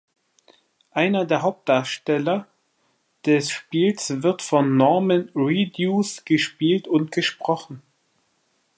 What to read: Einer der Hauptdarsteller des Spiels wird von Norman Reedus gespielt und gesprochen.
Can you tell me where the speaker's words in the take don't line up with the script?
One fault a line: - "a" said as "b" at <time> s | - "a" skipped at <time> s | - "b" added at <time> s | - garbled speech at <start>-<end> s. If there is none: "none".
none